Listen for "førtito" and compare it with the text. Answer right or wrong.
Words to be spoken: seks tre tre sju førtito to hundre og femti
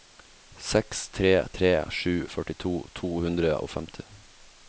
right